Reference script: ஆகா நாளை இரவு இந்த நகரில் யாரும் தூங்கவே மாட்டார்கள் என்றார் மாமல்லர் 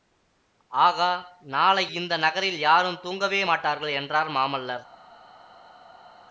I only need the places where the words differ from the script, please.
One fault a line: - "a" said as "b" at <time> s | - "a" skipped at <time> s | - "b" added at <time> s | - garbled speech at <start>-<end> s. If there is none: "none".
- "இரவு" skipped at 1.8 s